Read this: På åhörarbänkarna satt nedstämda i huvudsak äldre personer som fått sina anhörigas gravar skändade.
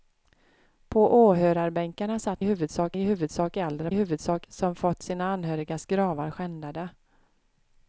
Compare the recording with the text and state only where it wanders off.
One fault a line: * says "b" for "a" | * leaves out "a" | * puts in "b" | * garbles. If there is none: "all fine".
* says "huvudsak" for "nedstämda"
* says "huvudsak" for "personer"